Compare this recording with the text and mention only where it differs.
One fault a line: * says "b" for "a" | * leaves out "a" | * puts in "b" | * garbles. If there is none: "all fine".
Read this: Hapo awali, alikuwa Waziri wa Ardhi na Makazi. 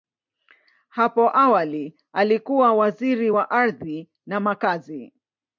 all fine